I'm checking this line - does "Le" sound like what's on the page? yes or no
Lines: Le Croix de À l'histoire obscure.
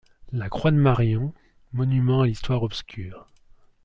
no